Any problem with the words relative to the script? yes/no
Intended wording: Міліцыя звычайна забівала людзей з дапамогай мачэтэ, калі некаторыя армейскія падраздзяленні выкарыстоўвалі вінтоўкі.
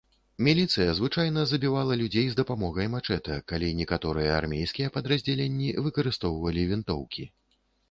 no